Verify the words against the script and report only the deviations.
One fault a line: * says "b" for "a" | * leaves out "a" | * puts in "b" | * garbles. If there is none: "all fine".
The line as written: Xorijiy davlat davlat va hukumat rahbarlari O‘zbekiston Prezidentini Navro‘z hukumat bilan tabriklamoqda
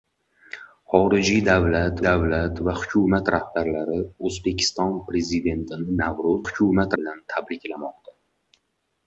all fine